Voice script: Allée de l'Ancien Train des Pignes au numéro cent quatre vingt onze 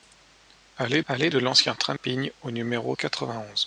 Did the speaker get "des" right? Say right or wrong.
wrong